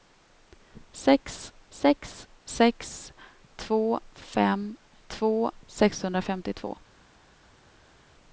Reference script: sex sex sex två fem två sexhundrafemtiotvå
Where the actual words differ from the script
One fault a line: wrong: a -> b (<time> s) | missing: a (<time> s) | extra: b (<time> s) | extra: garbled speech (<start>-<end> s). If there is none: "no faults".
no faults